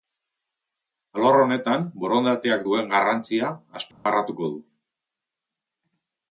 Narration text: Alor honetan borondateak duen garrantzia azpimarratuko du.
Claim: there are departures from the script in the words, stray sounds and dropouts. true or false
true